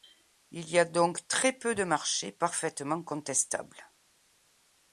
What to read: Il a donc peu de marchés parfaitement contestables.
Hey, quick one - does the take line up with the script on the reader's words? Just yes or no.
no